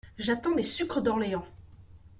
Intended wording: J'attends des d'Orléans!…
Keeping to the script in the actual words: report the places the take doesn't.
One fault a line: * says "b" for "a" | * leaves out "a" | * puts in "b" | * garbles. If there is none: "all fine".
* puts in "sucres"